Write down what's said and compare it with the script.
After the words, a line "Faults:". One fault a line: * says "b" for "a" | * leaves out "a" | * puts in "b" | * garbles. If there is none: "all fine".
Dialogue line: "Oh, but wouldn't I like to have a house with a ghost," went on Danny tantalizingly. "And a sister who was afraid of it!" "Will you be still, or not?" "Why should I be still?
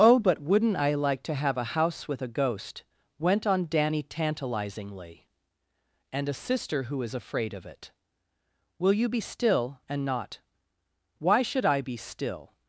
"Oh, but wouldn't I like to have a house with a ghost," went on Danny tantalizingly. "And a sister who is afraid of it!" "Will you be still, and not?" "Why should I be still?
Faults:
* says "is" for "was"
* says "and" for "or"